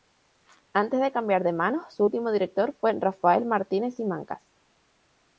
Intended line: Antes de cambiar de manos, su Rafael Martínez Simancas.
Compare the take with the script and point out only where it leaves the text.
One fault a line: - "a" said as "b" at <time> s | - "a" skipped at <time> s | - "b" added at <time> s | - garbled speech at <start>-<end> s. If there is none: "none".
- "último director fue" added at 2.0 s